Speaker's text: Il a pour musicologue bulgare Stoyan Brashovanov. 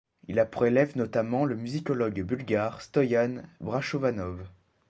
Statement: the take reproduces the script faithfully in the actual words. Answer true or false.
false